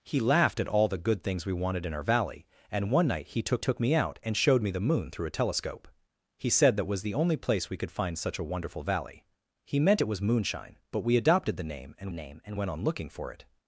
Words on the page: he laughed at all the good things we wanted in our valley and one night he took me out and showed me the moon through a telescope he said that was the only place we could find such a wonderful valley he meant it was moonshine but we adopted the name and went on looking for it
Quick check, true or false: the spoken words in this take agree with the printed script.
false